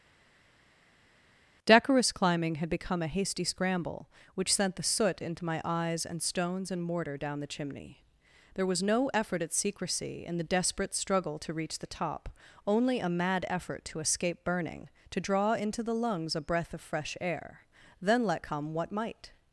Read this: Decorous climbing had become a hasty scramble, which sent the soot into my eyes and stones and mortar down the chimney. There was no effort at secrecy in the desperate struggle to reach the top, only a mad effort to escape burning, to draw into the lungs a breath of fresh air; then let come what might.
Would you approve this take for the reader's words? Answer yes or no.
yes